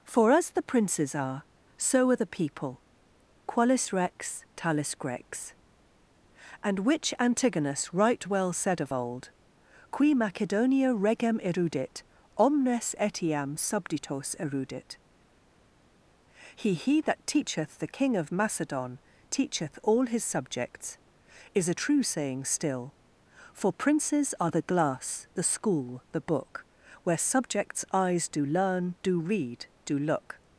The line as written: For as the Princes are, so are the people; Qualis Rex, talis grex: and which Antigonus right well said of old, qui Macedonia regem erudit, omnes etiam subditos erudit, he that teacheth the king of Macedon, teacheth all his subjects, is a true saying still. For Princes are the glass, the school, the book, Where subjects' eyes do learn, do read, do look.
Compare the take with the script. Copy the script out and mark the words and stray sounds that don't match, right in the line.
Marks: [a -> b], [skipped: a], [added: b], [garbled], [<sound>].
For as the Princes are, so are the people; Qualis Rex, talis grex: and which Antigonus right well said of old, qui Macedonia regem erudit, omnes etiam subditos erudit, he [added: he] that teacheth the king of Macedon, teacheth all his subjects, is a true saying still. For Princes are the glass, the school, the book, Where subjects' eyes do learn, do read, do look.